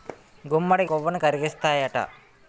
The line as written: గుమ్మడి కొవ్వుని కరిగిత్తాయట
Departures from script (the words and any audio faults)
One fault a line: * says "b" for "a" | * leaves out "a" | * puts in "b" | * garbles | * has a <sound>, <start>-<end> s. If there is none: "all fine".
all fine